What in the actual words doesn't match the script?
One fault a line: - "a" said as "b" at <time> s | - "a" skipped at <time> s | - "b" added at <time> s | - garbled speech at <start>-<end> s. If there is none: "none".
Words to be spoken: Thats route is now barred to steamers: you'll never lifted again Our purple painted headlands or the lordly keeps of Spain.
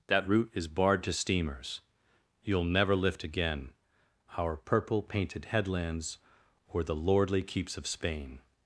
- "Thats" said as "That" at 0.1 s
- "now" skipped at 0.7 s
- "lifted" said as "lift" at 3.0 s